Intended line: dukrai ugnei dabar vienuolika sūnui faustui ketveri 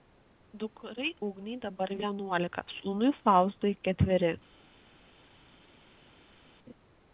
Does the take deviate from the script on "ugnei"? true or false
false